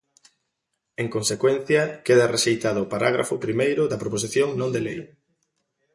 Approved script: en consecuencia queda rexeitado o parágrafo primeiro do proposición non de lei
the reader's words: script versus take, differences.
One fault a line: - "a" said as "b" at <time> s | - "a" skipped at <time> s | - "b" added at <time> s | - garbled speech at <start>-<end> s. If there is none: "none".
- "do" said as "da" at 3.9 s